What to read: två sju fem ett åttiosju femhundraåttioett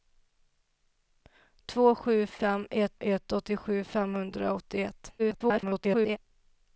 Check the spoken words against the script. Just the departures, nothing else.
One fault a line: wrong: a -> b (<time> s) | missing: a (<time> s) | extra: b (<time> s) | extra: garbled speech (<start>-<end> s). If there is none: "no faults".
extra: ett (3.0 s)
extra: garbled speech (5.2-6.2 s)